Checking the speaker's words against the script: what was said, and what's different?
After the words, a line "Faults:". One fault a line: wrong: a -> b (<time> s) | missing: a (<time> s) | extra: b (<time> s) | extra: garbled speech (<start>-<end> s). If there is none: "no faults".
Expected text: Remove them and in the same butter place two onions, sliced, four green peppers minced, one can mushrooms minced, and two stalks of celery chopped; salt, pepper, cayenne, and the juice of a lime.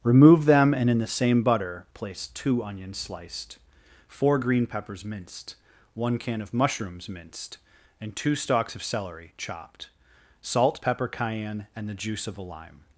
Remove them and in the same butter place two onions, sliced, four green peppers minced, one can of mushrooms minced, and two stalks of celery chopped; salt, pepper, cayenne, and the juice of a lime.
Faults:
extra: of (6.4 s)